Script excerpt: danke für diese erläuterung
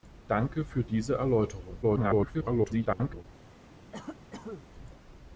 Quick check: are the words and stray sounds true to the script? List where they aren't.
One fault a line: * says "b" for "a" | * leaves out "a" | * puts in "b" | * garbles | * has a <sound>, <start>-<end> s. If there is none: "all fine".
* garbles
* has a cough, 3.9-4.7 s